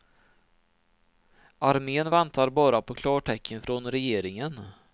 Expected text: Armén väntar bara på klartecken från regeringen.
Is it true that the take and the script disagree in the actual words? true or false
false